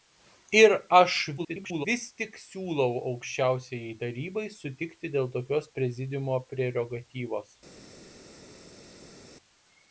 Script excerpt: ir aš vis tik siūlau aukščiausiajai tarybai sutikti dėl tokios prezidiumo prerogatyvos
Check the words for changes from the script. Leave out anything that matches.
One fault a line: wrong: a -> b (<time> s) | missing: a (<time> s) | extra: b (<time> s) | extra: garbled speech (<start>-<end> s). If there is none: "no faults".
extra: garbled speech (1.4-1.9 s)